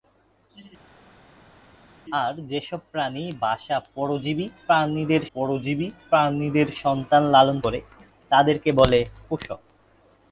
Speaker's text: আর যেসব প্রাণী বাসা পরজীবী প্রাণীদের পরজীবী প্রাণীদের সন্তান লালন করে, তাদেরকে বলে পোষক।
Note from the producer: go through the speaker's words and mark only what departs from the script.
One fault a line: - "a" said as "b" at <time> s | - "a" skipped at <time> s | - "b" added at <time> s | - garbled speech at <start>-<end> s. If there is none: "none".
none